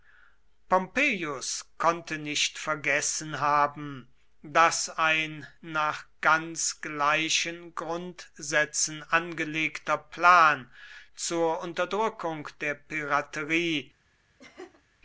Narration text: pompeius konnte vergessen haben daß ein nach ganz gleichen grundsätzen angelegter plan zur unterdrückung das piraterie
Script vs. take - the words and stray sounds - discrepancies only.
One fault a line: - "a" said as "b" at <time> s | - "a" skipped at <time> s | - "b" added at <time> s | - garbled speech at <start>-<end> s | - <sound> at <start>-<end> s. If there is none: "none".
- "nicht" added at 2.2 s
- "das" said as "der" at 12.6 s
- laugh at 14.4-14.8 s